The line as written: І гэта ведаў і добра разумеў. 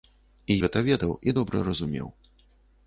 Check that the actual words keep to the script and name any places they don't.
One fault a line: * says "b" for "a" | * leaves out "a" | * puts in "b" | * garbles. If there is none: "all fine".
all fine